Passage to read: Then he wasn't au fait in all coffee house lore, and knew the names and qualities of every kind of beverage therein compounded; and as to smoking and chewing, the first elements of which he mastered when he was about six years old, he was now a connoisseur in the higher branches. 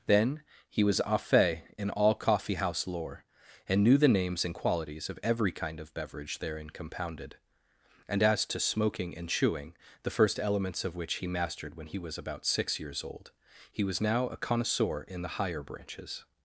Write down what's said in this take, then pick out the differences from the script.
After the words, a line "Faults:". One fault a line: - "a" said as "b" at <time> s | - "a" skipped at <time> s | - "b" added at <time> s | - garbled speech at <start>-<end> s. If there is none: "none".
Then he was au fait in all coffee house lore, and knew the names and qualities of every kind of beverage therein compounded; and as to smoking and chewing, the first elements of which he mastered when he was about six years old, he was now a connoisseur in the higher branches.
Faults:
- "wasn't" said as "was" at 0.8 s